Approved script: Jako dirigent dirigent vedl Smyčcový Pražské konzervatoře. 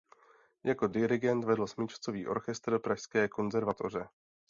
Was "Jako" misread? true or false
false